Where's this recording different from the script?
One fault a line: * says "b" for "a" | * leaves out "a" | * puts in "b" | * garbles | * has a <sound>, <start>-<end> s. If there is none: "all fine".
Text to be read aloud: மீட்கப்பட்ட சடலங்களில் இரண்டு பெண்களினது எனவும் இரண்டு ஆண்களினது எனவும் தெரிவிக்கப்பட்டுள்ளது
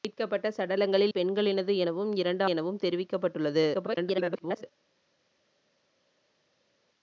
* leaves out "இரண்டு"
* leaves out "ஆண்களினது"
* garbles